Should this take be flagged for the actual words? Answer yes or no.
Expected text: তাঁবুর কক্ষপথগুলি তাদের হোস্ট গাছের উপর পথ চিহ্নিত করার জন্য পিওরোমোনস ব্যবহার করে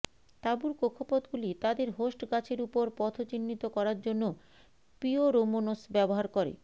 no